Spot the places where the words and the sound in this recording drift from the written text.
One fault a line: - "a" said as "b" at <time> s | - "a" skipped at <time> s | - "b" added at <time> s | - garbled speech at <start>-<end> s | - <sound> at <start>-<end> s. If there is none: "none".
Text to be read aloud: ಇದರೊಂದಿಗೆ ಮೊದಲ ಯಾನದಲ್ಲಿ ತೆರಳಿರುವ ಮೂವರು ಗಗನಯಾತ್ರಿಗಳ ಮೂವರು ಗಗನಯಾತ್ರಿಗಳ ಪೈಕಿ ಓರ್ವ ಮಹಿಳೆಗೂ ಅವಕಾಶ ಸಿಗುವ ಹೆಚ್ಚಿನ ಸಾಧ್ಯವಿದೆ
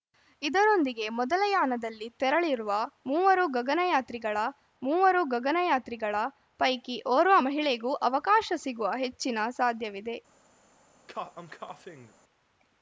- cough at 11.1-12.1 s